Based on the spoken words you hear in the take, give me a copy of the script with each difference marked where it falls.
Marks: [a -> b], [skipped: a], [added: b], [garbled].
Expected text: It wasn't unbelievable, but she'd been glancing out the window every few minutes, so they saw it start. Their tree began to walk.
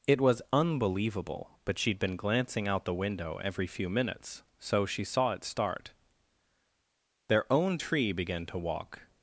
It [wasn't -> was] unbelievable, but she'd been glancing out the window every few minutes, so [they -> she] saw it start. Their [added: own] tree began to walk.